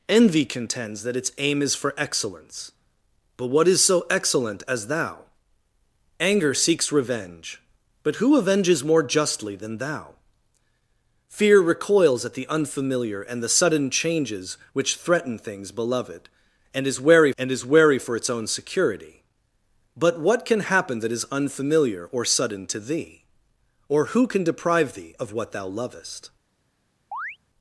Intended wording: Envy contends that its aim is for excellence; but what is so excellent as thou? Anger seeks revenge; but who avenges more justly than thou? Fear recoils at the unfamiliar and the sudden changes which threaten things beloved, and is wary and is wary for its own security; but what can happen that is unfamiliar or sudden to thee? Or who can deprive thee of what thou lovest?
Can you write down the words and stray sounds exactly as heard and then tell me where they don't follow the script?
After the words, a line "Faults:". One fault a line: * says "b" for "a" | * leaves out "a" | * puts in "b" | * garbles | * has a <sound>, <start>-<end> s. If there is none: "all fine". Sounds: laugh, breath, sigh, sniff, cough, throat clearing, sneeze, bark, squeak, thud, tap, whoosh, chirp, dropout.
Envy contends that its aim is for excellence; but what is so excellent as thou? Anger seeks revenge; but who avenges more justly than thou? Fear recoils at the unfamiliar and the sudden changes which threaten things beloved, and is wary and is wary for its own security; but what can happen that is unfamiliar or sudden to thee? Or who can deprive thee of what thou lovest?
Faults:
* has a chirp, 27.1-27.4 s